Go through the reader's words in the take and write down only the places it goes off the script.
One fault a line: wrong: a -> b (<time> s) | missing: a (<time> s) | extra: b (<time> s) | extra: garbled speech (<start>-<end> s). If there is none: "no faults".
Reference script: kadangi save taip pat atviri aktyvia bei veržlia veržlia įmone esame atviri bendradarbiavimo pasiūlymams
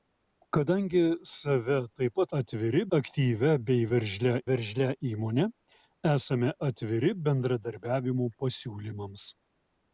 no faults